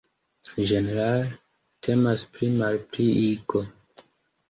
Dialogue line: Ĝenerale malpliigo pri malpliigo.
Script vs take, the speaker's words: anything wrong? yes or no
yes